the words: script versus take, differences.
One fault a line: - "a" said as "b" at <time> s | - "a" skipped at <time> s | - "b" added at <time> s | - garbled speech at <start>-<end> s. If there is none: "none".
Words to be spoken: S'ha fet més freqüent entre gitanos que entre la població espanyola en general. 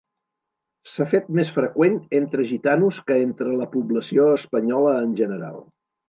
none